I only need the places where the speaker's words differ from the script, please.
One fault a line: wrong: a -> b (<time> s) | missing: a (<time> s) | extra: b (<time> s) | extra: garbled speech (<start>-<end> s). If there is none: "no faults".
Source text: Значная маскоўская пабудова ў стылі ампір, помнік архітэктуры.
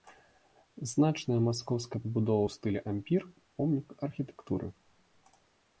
no faults